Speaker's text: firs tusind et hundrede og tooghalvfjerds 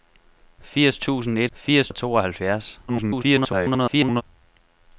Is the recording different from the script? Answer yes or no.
yes